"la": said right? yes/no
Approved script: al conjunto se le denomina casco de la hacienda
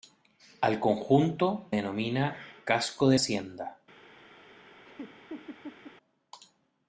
no